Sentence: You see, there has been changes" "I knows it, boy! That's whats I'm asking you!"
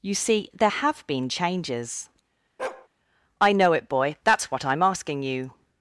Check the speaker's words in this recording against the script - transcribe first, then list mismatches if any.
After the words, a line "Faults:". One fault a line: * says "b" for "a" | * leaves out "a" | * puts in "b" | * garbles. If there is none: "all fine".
You see, there have been changes" "I know it, boy! That's what I'm asking you!"
Faults:
* says "have" for "has"
* says "know" for "knows"
* says "what" for "whats"